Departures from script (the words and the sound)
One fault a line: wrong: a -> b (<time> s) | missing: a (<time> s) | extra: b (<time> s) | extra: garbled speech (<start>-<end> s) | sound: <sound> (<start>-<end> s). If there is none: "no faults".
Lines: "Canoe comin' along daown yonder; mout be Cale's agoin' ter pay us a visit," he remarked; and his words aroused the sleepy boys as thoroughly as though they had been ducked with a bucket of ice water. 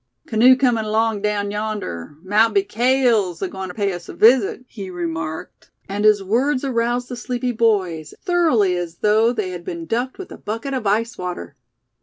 missing: as (8.1 s)